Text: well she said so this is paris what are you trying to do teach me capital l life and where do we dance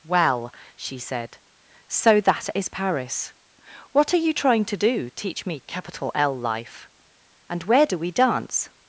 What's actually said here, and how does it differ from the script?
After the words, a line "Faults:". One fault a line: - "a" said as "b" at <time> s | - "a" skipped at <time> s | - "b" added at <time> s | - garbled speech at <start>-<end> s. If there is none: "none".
well she said so that is paris what are you trying to do teach me capital l life and where do we dance
Faults:
- "this" said as "that" at 2.2 s